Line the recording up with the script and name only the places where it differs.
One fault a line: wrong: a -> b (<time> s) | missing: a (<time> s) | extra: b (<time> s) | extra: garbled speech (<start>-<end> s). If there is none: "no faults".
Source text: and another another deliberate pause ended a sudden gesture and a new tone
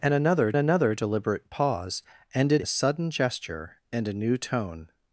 no faults